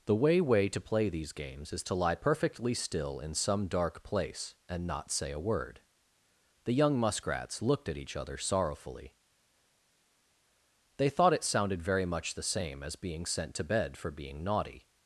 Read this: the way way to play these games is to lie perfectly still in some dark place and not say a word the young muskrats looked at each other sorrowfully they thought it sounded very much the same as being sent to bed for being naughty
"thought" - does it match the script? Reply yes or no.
yes